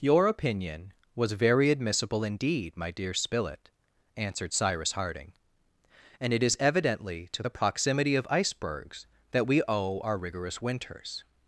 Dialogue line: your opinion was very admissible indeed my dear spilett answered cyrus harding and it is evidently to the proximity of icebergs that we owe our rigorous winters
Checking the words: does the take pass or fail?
pass